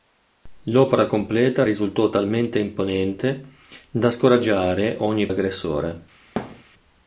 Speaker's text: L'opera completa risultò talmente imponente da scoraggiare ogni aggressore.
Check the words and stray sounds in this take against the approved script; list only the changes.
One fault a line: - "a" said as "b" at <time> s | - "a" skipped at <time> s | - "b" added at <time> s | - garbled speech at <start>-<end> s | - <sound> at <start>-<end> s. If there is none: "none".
- thud at 6.4-6.6 s